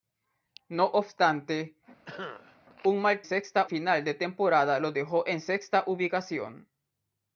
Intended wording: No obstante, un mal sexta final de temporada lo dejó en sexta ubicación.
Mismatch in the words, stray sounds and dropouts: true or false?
true